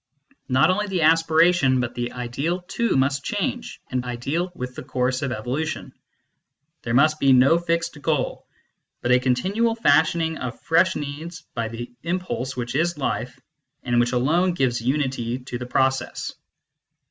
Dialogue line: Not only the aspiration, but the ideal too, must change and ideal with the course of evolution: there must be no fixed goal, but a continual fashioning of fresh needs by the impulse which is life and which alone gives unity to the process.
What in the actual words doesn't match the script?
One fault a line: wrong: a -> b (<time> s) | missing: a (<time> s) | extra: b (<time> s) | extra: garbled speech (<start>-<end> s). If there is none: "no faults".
no faults